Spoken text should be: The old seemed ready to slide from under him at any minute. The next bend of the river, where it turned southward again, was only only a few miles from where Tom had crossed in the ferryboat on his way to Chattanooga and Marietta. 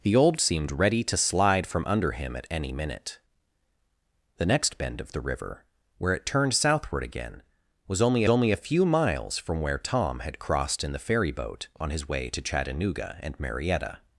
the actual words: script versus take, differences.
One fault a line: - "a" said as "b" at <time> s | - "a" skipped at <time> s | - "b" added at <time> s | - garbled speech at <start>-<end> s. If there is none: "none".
none